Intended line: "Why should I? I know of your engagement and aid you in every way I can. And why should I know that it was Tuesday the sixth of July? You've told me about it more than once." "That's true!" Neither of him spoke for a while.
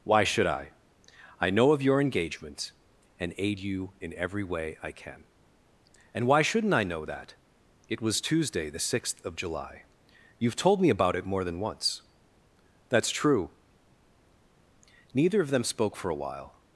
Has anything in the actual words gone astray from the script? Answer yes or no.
yes